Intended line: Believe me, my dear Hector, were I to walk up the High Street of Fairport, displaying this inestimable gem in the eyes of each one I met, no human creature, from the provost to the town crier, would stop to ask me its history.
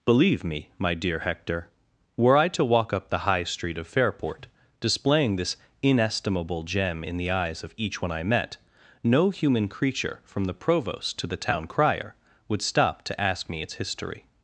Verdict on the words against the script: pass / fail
pass